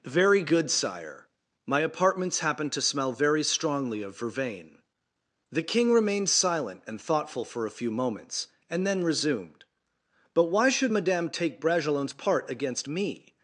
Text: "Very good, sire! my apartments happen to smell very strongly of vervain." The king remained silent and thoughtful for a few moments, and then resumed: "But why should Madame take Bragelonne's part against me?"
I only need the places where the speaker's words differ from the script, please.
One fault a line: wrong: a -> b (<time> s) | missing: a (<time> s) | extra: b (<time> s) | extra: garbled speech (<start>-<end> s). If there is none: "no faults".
no faults